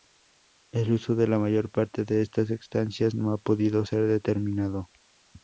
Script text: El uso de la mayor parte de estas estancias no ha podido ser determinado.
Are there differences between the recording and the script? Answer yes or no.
no